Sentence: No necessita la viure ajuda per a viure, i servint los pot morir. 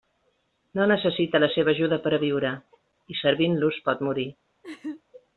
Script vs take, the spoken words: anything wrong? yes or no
yes